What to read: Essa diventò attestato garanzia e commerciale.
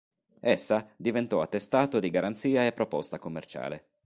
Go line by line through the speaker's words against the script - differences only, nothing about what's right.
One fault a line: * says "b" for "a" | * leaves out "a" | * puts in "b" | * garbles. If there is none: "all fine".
* puts in "di"
* puts in "proposta"